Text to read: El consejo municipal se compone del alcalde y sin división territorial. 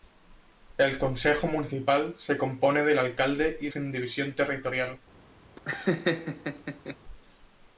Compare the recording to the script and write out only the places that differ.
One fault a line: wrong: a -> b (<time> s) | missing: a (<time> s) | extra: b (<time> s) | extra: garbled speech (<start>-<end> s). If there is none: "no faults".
no faults